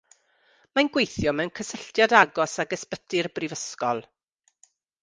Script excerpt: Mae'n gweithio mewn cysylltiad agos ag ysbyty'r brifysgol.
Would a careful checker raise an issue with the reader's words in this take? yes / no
no